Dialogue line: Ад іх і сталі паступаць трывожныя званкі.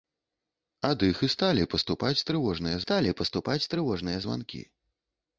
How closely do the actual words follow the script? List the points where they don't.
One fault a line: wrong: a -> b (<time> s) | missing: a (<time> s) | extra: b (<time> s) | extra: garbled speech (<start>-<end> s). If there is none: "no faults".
extra: сталі паступаць трывожныя (2.8 s)